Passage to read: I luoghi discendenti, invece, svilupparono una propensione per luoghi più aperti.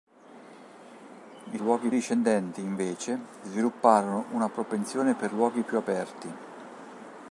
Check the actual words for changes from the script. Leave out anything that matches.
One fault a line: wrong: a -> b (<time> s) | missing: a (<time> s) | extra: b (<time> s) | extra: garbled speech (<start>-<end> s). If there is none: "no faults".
no faults